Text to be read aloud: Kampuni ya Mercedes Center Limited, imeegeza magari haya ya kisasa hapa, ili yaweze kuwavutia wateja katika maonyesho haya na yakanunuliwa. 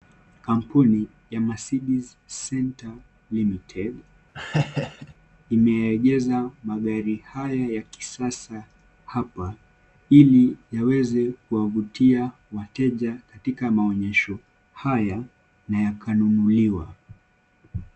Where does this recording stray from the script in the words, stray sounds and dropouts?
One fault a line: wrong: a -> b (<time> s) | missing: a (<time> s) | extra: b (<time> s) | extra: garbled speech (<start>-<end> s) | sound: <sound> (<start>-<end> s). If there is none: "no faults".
sound: laugh (4.3-5.1 s)